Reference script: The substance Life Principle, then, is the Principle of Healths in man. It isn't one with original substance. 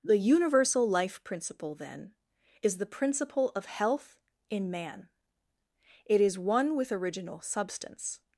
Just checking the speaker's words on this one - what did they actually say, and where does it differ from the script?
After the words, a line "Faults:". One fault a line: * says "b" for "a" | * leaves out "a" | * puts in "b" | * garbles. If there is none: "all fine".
The universal Life Principle, then, is the Principle of Health in man. It is one with original substance.
Faults:
* says "universal" for "substance"
* says "Health" for "Healths"
* says "is" for "isn't"